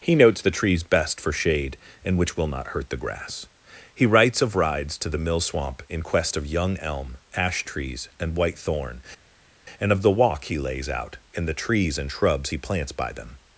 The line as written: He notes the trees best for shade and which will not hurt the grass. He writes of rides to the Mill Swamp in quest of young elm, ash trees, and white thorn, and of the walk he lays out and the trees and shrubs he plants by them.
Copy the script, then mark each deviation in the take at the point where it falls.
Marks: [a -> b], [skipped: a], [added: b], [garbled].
He notes the trees best for shade and which will not hurt the grass. He writes of rides to the Mill Swamp in quest of young elm, ash trees, and white thorn, and of the walk he lays out and the trees and shrubs he plants by them.